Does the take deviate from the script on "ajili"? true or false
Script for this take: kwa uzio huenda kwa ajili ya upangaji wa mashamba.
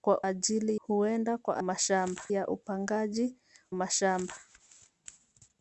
true